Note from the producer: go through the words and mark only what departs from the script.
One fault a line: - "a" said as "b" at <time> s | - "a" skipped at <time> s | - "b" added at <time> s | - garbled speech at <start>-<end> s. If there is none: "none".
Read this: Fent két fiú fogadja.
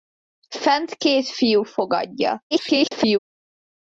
- garbled speech at 2.5-3.2 s